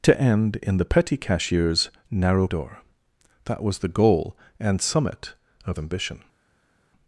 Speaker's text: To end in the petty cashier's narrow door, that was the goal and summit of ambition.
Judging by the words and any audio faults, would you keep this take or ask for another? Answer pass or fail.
pass